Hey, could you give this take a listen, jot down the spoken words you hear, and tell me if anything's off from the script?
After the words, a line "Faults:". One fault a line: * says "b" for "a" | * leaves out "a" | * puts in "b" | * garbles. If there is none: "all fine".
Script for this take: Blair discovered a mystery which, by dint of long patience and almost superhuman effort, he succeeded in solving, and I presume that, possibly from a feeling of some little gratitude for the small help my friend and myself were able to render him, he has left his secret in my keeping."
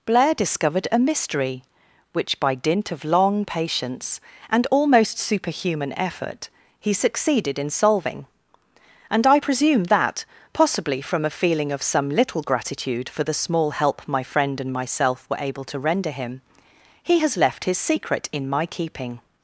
Blair discovered a mystery which, by dint of long patience and almost superhuman effort, he succeeded in solving, and I presume that, possibly from a feeling of some little gratitude for the small help my friend and myself were able to render him, he has left his secret in my keeping."
Faults:
all fine